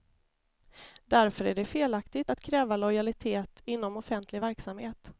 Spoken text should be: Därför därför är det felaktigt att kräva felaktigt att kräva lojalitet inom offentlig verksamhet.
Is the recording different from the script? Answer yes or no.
yes